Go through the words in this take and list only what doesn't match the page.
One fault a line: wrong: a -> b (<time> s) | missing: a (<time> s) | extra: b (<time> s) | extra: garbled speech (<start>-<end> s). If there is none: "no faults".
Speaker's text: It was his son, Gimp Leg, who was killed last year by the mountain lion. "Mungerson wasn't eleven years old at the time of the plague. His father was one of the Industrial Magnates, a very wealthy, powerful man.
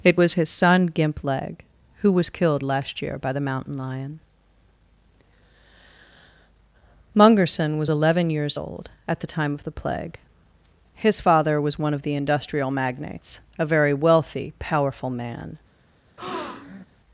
wrong: wasn't -> was (7.8 s)